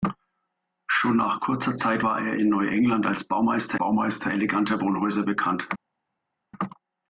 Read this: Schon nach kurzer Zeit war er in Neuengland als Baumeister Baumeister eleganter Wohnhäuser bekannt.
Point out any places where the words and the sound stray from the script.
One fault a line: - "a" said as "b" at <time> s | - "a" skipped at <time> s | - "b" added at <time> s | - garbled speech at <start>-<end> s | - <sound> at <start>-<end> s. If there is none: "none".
none